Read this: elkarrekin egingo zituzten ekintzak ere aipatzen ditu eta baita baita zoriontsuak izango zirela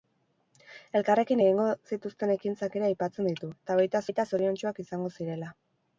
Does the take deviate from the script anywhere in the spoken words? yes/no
no